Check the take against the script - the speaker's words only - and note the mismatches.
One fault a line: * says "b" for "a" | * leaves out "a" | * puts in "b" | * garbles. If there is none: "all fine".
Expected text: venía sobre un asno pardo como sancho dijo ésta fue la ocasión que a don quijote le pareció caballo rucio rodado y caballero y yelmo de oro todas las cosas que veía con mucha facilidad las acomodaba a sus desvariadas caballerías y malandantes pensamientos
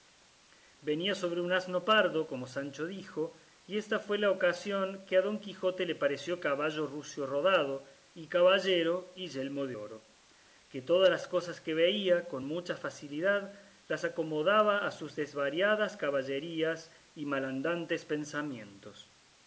* puts in "y"
* puts in "que"